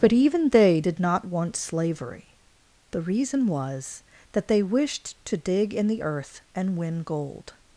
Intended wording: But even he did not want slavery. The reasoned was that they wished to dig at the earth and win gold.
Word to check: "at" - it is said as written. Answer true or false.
false